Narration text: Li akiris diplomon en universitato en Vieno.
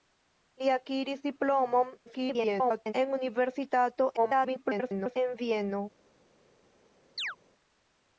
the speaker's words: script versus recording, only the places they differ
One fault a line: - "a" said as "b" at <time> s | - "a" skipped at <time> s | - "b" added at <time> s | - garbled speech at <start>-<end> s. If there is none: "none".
- garbled speech at 2.1-2.9 s
- garbled speech at 4.2-5.2 s